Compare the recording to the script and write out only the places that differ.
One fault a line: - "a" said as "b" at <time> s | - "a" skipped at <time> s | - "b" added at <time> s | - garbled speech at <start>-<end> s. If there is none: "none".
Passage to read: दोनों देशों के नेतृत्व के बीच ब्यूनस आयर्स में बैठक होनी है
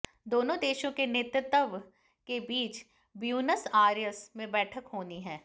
none